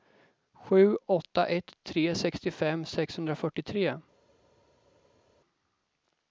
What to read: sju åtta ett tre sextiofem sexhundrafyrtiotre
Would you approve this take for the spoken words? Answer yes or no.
yes